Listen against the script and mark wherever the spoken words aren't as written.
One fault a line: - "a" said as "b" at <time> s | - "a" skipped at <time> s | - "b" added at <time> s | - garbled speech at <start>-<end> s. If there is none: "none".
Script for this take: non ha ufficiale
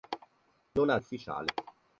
none